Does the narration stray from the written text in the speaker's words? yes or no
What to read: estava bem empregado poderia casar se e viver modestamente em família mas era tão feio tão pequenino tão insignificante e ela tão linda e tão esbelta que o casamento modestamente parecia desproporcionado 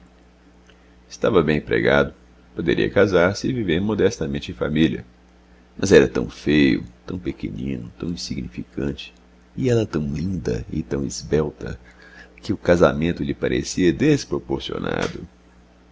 yes